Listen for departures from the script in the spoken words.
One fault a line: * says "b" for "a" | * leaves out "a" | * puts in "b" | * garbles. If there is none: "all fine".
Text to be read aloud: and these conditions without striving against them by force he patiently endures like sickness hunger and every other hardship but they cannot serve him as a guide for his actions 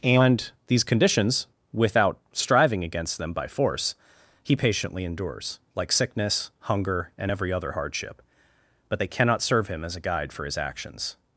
all fine